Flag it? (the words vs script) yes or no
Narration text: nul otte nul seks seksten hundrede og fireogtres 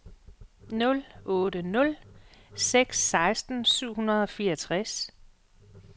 yes